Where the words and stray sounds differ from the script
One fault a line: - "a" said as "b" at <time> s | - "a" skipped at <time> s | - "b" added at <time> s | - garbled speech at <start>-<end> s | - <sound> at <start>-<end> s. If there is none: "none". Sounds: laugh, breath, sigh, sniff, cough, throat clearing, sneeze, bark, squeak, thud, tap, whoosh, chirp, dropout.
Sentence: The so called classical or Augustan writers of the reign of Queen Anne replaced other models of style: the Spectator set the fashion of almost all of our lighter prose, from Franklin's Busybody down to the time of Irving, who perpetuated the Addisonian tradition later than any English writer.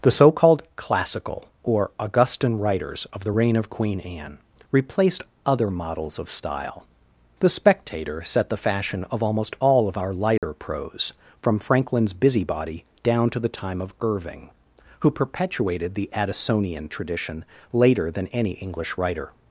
- dropout at 10.4-10.4 s